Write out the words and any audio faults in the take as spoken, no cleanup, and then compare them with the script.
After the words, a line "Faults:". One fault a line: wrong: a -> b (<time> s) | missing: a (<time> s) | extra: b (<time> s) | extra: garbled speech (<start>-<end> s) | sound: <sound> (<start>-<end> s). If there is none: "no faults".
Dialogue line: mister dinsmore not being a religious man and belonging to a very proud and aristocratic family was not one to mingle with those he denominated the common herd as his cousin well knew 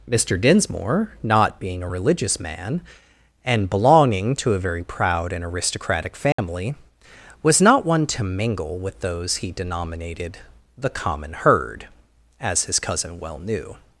mister dinsmore not being a religious man and belonging to a very proud and aristocratic family was not one to mingle with those he denominated the common herd as his cousin well knew
Faults:
sound: dropout (6.3-6.4 s)